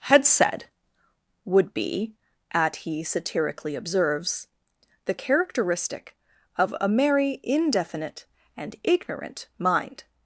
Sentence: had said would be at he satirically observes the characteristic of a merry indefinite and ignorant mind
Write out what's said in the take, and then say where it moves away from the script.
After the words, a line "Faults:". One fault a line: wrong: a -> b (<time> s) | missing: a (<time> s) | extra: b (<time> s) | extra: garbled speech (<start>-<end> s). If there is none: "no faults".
had said would be at he satirically observes the characteristic of a merry indefinite and ignorant mind
Faults:
no faults